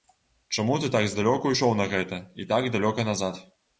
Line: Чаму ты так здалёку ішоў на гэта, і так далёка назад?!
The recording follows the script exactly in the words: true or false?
true